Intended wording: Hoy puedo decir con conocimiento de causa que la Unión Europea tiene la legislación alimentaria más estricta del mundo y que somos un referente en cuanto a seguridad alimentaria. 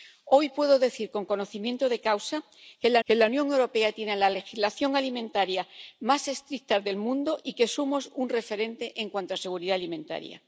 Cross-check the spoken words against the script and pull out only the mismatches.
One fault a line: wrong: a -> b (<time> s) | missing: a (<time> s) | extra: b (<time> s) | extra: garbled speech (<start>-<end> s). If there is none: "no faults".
extra: que la (3.0 s)